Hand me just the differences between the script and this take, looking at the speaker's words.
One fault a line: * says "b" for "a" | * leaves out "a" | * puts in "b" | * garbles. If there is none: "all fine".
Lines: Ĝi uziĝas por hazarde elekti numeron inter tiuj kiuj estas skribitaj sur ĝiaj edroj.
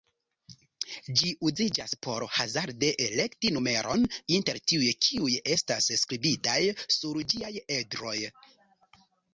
all fine